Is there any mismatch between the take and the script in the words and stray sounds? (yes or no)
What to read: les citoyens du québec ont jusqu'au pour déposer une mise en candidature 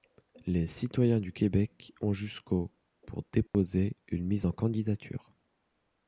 yes